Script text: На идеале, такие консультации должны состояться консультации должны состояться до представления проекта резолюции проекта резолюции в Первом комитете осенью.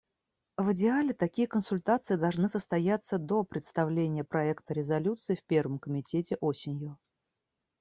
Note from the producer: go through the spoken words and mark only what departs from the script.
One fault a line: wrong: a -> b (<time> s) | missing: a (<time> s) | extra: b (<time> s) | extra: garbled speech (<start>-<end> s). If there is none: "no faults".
wrong: На -> В (0.6 s)
missing: консультации должны состояться (3.2 s)
missing: проекта резолюции (5.4 s)